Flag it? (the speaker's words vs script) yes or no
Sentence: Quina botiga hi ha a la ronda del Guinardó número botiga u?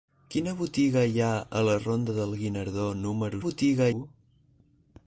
no